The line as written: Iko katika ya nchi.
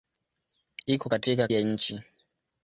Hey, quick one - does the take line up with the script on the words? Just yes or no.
yes